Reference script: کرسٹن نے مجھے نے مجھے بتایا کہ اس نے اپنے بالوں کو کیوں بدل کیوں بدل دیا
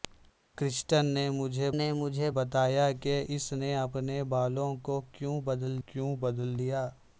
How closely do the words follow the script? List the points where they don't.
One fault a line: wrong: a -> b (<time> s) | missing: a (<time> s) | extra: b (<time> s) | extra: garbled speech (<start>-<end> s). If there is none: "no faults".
no faults